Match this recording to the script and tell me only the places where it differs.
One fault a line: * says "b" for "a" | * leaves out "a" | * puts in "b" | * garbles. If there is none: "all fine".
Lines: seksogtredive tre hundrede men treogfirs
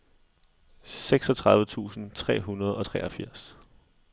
* puts in "tusind"
* says "og" for "men"